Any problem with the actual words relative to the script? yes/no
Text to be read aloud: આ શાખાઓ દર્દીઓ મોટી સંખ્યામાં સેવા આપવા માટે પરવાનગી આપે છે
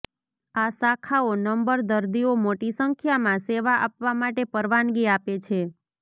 yes